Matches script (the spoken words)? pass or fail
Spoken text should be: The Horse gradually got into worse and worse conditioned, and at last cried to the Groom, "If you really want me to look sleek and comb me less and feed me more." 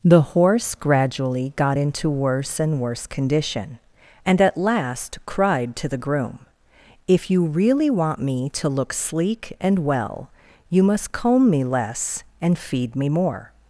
fail